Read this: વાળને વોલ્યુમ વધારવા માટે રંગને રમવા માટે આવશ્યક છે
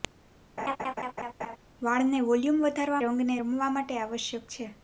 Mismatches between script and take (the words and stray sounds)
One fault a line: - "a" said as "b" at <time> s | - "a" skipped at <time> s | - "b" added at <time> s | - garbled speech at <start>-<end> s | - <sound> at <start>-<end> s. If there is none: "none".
- laugh at 0.6-1.6 s
- "માટે" skipped at 3.0 s